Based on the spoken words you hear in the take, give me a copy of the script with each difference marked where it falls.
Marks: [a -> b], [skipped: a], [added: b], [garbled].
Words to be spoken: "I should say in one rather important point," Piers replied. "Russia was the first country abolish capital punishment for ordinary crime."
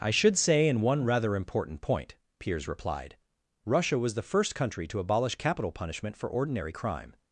"I should say in one rather important point," Piers replied. "Russia was the first country [added: to] abolish capital punishment for ordinary crime."